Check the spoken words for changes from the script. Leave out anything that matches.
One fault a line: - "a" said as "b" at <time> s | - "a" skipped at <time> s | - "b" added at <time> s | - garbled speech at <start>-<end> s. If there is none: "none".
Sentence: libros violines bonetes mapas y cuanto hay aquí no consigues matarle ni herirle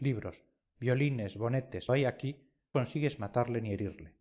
- "mapas y cuanto" skipped at 1.9 s
- "no" skipped at 2.5 s